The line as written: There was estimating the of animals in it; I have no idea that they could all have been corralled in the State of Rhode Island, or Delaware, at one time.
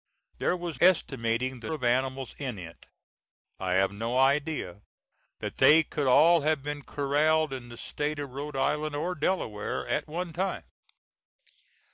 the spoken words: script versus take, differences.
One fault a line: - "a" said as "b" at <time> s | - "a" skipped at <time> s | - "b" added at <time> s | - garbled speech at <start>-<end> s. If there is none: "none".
none